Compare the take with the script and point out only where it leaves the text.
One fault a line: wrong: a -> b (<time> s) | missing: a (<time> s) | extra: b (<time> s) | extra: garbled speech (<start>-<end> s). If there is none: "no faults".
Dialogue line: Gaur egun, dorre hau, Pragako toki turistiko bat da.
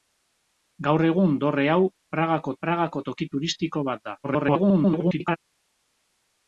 extra: Pragako (2.6 s)
extra: garbled speech (4.2-5.4 s)